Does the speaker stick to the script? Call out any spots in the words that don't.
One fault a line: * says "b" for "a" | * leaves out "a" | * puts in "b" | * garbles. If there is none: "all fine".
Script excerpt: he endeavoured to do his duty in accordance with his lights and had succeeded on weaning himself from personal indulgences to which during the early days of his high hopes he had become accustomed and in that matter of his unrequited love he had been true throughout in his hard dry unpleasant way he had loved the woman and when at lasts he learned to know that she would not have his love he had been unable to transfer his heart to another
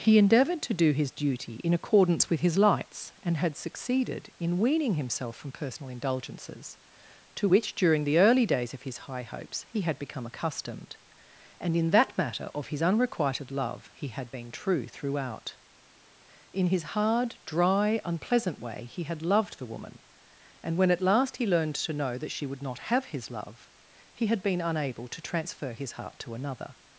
* says "in" for "on"
* says "last" for "lasts"